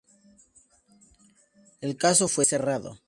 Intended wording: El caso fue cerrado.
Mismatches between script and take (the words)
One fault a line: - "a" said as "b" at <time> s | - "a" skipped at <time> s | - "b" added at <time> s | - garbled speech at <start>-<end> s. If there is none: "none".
none